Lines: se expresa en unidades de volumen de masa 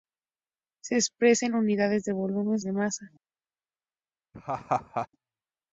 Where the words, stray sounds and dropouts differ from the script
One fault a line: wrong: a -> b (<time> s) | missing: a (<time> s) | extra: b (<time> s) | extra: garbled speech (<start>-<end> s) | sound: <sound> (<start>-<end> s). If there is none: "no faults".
sound: laugh (4.3-5.1 s)